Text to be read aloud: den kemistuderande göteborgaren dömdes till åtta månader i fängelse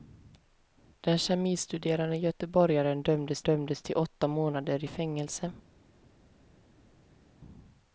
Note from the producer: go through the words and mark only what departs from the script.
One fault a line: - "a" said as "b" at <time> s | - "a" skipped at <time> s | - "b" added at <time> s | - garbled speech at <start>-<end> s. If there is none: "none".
- "dömdes" added at 3.4 s